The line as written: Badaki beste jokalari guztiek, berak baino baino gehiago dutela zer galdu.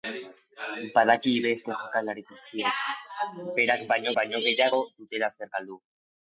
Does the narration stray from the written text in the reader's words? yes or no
no